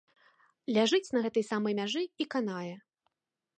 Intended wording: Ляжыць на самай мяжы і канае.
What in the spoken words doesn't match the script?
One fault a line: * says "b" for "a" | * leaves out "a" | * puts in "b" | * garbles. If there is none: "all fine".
* puts in "гэтай"